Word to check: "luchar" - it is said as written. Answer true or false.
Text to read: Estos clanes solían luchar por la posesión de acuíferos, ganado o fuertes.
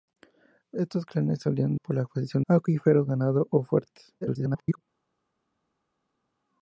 false